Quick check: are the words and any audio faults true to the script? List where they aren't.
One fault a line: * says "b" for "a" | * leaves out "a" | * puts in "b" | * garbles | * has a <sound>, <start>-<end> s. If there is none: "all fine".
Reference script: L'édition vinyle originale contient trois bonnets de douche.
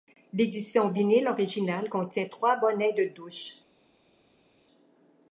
all fine